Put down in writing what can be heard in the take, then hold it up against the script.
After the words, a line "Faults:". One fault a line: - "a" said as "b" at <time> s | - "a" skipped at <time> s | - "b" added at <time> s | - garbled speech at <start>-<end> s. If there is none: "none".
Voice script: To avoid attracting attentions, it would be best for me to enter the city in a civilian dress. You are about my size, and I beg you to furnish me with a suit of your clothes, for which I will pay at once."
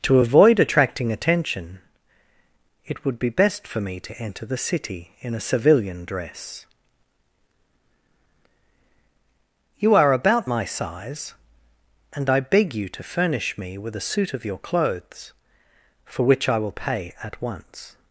To avoid attracting attention, it would be best for me to enter the city in a civilian dress. You are about my size, and I beg you to furnish me with a suit of your clothes, for which I will pay at once."
Faults:
- "attentions" said as "attention" at 1.1 s